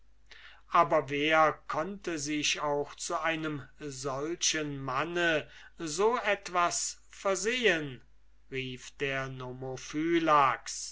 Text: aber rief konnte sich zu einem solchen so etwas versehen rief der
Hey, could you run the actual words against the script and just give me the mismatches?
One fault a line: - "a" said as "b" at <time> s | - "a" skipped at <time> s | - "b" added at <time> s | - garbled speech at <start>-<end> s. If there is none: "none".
- "rief" said as "wer" at 1.1 s
- "auch" added at 2.6 s
- "manne" added at 4.8 s